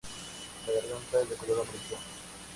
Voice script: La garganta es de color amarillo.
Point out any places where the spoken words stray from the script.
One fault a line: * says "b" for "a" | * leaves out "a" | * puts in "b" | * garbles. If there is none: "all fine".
all fine